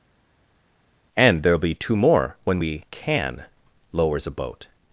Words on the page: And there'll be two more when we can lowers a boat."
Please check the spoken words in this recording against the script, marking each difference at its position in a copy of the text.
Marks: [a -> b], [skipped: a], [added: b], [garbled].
And there'll be two more when we can lowers a boat."